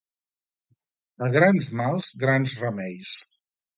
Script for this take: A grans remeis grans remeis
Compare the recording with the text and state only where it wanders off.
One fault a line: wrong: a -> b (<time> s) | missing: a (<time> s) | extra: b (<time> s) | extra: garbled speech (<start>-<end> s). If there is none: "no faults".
wrong: remeis -> mals (1.8 s)